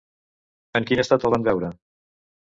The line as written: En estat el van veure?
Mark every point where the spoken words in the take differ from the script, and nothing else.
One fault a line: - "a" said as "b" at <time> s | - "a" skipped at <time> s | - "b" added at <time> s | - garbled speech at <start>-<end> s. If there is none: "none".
- "quin" added at 0.9 s